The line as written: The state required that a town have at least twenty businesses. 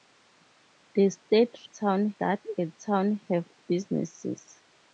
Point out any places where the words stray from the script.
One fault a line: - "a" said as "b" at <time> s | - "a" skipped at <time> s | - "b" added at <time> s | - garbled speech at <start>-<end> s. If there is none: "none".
- "required" said as "town" at 1.6 s
- "at least twenty" skipped at 3.5 s